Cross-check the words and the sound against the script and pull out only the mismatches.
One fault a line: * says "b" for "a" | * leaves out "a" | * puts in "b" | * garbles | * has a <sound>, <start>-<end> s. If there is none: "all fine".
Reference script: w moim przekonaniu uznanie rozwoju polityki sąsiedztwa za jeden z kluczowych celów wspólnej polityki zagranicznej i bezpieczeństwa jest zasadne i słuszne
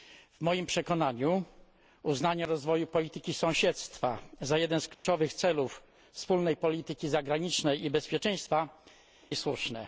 * has a dropout, 4.9-5.0 s
* leaves out "jest zasadne"